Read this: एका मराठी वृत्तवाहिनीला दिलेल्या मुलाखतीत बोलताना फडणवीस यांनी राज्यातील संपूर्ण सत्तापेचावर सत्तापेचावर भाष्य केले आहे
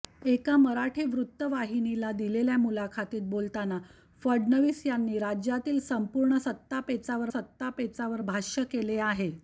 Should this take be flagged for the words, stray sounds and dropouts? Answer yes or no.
no